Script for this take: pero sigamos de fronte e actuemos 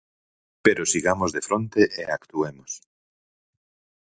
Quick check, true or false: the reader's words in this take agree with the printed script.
true